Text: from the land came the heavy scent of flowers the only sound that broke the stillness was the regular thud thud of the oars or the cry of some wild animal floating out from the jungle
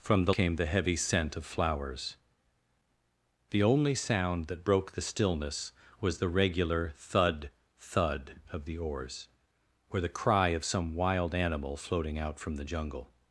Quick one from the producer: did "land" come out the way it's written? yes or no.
no